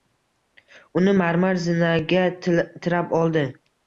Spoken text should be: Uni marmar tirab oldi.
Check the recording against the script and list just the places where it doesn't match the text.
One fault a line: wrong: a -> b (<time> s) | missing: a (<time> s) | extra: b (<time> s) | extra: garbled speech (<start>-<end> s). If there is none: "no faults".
extra: zinaga (1.6 s)